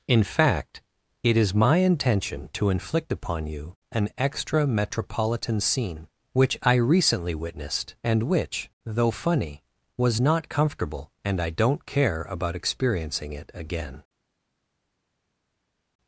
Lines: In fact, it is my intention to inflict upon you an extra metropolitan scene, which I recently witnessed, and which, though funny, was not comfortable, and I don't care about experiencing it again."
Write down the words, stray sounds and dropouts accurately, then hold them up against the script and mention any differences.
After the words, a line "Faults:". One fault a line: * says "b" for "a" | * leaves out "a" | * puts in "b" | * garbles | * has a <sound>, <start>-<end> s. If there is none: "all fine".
In fact, it is my intention to inflict upon you an extra metropolitan scene, which I recently witnessed, and which, though funny, was not comfortable, and I don't care about experiencing it again."
Faults:
all fine